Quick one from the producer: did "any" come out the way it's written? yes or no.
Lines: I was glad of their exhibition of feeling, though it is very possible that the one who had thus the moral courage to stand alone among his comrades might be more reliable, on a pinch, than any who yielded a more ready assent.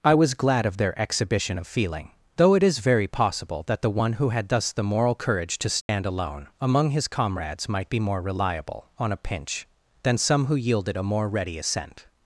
no